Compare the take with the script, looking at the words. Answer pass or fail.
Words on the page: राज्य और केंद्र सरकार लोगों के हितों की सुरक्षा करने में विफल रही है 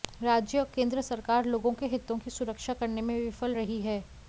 pass